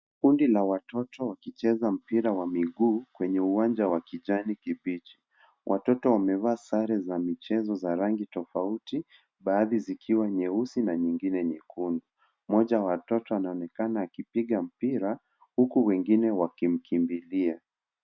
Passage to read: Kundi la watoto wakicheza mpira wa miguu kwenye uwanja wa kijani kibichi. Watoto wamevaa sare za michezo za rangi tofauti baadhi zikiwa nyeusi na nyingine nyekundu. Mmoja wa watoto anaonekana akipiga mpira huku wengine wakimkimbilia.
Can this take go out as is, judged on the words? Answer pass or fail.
pass